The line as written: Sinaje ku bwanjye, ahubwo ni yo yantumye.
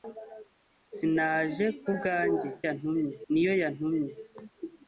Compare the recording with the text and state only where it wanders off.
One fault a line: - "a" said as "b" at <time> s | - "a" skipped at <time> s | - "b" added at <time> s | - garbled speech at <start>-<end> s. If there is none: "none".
- "ahubwo" said as "yantumye" at 2.6 s